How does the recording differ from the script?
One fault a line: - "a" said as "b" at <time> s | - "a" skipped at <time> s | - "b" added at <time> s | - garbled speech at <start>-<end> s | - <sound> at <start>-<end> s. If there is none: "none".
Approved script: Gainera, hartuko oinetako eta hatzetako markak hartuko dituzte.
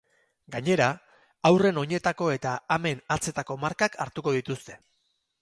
- "hartuko" said as "haurren" at 1.5 s
- "amen" added at 2.8 s